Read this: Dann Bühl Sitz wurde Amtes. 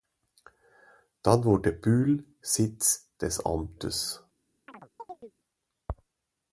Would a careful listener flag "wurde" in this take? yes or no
yes